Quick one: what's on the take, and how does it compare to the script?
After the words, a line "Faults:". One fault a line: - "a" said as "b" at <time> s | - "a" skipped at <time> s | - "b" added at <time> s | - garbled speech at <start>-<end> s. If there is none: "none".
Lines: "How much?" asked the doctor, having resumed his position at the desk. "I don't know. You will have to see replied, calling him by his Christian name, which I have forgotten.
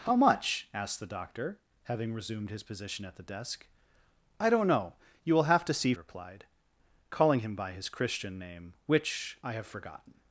"How much?" asked the doctor, having resumed his position at the desk. "I don't know. You will have to see replied, calling him by his Christian name, which I have forgotten.
Faults:
none